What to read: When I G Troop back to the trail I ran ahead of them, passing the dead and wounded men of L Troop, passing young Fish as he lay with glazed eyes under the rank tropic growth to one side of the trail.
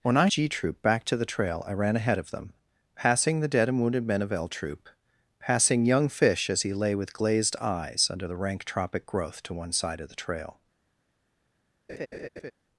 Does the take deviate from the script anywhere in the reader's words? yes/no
no